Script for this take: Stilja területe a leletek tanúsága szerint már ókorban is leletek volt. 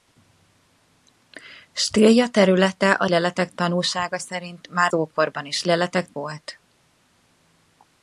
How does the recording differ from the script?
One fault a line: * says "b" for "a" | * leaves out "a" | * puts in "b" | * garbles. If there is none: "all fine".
all fine